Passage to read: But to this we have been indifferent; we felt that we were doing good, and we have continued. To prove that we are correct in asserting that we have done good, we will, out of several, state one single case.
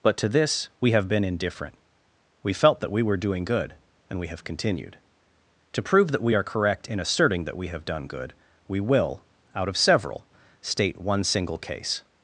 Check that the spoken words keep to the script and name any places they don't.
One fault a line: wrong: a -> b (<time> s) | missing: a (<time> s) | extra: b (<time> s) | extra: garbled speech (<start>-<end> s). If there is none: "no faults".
no faults